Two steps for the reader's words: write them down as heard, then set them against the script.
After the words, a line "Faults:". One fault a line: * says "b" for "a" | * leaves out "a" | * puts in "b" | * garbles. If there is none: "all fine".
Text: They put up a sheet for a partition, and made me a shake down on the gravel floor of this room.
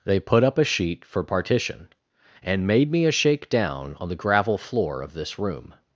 They put up a sheet for partition, and made me a shake down on the gravel floor of this room.
Faults:
* leaves out "a"